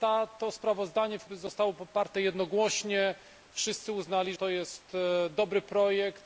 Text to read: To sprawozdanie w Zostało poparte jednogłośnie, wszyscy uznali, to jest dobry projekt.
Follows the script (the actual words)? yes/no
yes